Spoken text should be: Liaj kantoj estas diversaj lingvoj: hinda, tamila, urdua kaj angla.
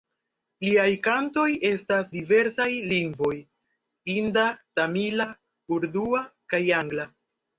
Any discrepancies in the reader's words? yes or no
no